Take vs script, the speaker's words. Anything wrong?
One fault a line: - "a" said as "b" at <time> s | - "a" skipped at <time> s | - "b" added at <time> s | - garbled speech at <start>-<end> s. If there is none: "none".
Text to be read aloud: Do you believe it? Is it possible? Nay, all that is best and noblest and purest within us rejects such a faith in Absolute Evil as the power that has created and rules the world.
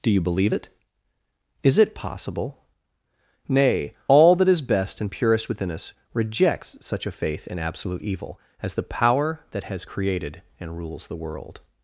- "noblest and" skipped at 5.1 s